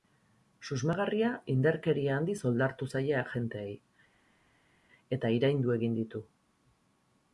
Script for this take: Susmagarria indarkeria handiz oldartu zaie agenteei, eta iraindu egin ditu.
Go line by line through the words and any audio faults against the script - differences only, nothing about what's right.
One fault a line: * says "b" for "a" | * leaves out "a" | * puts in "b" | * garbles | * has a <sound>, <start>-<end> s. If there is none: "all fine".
all fine